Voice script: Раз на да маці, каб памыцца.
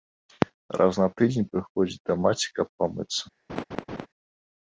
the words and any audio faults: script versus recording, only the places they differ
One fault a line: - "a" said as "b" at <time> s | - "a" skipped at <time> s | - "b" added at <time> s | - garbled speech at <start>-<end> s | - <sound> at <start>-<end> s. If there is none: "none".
- "тыдзень прыходзіць" added at 1.2 s
- laugh at 3.5-4.1 s